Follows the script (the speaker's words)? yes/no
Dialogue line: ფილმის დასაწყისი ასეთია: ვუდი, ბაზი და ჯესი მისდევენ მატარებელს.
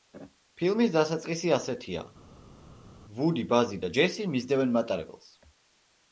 yes